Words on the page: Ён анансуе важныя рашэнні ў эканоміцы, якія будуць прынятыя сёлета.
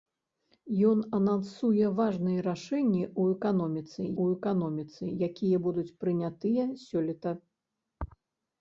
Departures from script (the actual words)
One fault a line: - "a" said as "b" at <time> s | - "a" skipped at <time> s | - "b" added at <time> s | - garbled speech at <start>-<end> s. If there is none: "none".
- "ў эканоміцы" added at 4.2 s